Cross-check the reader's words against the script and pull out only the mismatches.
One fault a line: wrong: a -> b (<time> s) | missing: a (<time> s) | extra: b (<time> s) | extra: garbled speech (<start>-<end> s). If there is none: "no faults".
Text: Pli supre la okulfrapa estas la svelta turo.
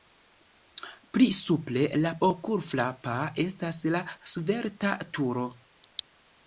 no faults